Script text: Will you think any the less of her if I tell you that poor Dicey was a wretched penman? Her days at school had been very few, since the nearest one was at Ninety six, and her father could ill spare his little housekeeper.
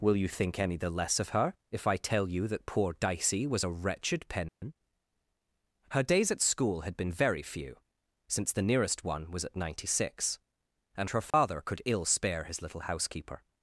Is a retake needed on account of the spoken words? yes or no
no